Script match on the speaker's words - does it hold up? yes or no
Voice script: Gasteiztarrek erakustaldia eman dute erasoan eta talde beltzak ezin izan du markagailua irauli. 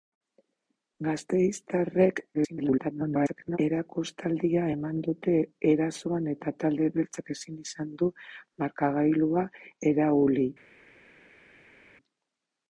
no